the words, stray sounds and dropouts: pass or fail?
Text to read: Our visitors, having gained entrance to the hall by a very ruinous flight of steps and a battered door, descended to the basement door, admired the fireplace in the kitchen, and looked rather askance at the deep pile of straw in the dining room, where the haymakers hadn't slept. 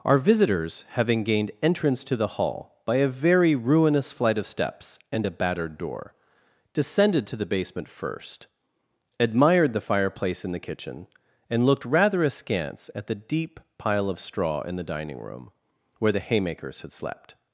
fail